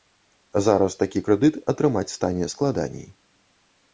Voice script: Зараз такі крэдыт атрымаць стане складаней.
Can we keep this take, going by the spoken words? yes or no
yes